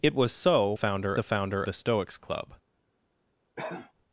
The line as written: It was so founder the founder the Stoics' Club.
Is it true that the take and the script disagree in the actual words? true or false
false